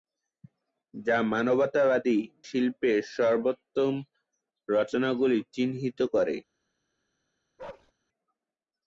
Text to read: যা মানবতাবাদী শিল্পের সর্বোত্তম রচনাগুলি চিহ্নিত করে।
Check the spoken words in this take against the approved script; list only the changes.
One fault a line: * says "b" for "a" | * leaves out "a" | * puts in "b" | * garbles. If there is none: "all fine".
all fine